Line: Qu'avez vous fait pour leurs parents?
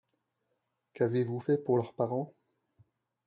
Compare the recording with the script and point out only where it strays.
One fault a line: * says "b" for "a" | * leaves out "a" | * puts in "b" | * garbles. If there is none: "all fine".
all fine